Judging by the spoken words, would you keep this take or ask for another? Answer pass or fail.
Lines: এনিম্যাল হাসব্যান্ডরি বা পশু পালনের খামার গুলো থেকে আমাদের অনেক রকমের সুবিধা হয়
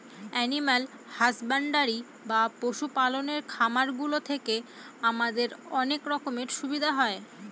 pass